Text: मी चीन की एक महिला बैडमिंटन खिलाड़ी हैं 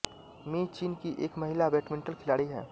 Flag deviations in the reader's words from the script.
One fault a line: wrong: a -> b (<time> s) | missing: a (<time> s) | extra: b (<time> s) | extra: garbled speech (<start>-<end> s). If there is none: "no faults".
no faults